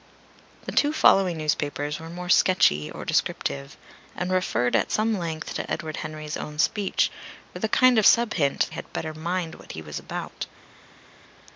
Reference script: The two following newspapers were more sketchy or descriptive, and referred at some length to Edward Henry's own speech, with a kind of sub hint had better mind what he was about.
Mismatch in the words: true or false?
false